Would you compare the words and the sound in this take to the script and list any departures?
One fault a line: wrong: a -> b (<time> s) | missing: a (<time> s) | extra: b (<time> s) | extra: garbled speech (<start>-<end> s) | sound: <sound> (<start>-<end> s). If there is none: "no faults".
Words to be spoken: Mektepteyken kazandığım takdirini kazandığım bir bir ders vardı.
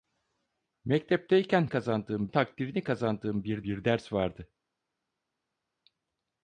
no faults